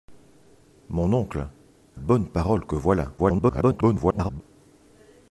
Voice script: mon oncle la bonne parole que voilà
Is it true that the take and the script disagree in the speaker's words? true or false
true